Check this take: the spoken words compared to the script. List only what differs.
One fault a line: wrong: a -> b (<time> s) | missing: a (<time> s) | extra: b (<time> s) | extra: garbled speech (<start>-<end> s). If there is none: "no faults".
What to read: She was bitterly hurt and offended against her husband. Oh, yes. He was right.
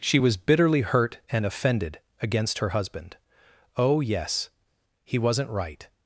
wrong: was -> wasn't (5.2 s)